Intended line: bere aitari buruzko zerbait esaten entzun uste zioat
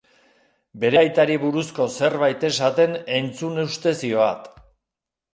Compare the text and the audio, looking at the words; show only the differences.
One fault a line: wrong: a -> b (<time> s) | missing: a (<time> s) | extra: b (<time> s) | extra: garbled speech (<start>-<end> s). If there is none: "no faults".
no faults